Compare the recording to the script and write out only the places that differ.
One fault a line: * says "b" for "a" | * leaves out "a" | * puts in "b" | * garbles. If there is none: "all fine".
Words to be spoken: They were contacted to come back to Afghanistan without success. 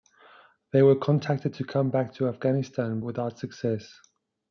all fine